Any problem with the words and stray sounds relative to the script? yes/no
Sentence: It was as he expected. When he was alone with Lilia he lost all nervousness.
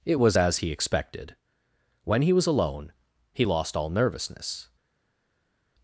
yes